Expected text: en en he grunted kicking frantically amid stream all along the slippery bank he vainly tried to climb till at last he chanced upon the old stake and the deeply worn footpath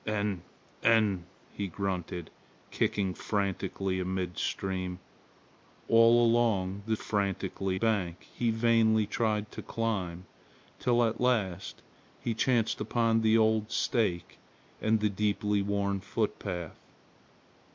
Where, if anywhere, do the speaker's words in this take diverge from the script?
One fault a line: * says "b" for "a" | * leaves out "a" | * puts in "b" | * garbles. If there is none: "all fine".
* says "frantically" for "slippery"